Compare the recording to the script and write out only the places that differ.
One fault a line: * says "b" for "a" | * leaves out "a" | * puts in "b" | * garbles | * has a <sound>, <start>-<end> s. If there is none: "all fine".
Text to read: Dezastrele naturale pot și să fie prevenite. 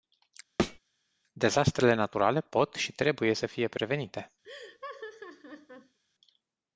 * has a thud, 0.6-0.8 s
* puts in "trebuie"
* has a laugh, 4.4-6.0 s